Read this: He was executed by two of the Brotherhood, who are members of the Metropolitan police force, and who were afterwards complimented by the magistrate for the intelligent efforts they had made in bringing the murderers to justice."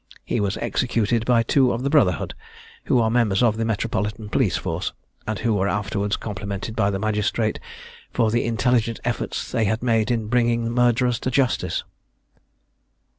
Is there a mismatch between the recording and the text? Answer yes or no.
no